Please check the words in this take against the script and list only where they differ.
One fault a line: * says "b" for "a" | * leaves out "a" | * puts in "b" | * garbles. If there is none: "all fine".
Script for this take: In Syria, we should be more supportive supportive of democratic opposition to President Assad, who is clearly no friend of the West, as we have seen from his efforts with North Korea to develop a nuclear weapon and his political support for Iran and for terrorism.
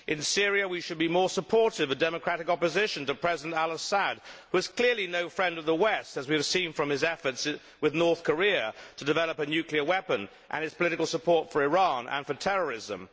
* leaves out "supportive"
* puts in "al"